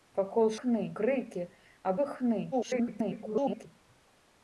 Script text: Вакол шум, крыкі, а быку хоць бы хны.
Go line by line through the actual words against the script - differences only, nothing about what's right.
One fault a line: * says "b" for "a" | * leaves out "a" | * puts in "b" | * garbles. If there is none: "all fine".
* says "хны" for "шум"
* leaves out "быку хоць"
* garbles